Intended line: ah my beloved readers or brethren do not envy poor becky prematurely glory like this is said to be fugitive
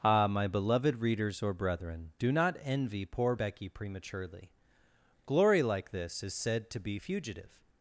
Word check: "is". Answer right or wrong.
right